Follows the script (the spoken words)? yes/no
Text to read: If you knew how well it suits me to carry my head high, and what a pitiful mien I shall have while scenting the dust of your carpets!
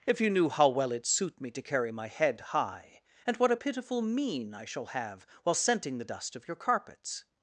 no